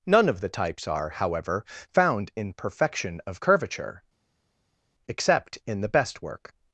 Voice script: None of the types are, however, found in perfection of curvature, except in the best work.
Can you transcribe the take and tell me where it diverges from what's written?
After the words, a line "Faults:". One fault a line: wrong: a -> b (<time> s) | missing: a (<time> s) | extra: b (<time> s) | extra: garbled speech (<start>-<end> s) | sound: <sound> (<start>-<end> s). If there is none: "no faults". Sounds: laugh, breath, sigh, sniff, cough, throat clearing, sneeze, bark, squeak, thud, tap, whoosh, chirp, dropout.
None of the types are, however, found in perfection of curvature, except in the best work.
Faults:
no faults